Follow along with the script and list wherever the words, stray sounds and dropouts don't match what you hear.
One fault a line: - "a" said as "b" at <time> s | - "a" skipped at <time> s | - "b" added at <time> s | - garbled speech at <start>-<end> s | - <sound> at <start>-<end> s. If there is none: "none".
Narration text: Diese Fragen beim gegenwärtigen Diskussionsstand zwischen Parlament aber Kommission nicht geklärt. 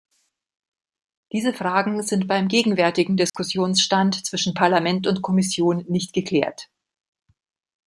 - "sind" added at 2.0 s
- dropout at 3.3-3.3 s
- "aber" said as "und" at 5.0 s